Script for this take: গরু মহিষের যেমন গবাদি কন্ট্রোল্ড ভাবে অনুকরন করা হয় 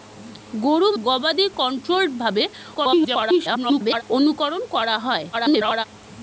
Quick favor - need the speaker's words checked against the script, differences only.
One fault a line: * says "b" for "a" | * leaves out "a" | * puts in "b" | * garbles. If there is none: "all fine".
* leaves out "মহিষের যেমন"
* garbles
* garbles